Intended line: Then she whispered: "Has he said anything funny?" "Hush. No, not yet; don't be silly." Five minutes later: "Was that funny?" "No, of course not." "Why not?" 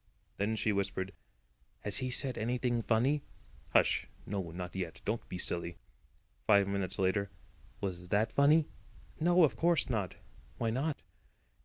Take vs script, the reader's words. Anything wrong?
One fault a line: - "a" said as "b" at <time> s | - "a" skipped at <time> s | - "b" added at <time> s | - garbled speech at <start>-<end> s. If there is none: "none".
none